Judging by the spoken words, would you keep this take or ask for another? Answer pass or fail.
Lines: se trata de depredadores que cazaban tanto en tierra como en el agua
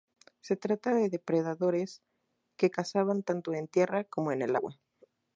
pass